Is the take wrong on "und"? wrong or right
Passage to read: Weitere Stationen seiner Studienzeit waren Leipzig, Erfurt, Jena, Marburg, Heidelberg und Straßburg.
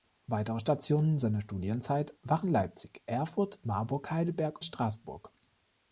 wrong